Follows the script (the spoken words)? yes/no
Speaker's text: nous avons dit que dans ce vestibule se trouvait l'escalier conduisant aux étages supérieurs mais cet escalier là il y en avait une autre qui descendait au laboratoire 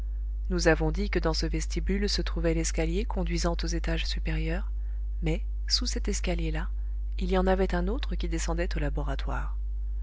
no